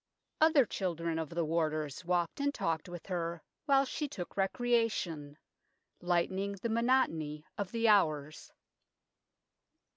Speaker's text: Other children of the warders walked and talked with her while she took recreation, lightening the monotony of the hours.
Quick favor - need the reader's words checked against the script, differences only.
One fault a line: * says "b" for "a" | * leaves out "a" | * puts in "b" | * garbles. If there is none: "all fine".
all fine